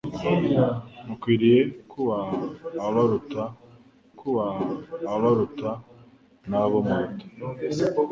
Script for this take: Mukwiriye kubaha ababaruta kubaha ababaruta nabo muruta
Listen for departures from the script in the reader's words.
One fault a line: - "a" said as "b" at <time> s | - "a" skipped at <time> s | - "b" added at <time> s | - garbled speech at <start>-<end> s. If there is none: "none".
none